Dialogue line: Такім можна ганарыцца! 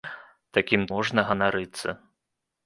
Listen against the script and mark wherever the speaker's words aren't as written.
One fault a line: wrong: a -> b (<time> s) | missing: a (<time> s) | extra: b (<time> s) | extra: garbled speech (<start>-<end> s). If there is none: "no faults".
no faults